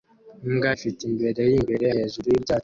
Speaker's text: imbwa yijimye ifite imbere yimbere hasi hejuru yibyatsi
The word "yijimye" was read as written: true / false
false